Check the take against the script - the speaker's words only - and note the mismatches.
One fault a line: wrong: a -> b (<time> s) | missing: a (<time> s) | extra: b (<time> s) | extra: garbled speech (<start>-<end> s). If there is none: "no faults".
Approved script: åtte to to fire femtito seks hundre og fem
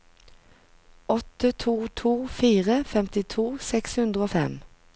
no faults